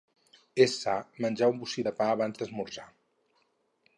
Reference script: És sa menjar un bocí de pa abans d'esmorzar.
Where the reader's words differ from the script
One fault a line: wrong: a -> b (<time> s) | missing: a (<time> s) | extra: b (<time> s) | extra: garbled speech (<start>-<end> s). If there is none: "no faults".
no faults